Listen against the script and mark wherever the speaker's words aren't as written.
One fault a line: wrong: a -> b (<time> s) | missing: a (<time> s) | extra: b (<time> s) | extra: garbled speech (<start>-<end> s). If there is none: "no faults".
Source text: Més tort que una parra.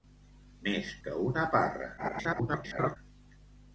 missing: tort (0.9 s)
extra: garbled speech (2.0-3.0 s)